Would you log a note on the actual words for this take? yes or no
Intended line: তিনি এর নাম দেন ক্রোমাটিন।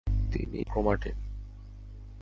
yes